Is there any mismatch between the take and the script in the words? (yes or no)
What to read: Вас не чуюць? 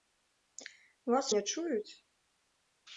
no